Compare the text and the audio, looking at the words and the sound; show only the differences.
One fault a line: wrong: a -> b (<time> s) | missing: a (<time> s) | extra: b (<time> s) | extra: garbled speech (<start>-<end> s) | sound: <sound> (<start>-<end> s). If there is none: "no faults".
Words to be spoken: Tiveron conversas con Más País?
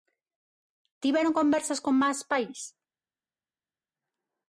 no faults